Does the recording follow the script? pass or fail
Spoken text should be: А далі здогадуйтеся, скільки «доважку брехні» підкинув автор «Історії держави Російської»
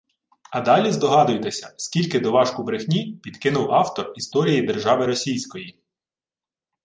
pass